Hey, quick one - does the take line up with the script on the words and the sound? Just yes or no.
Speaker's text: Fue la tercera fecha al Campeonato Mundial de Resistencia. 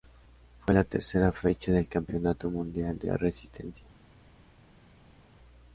no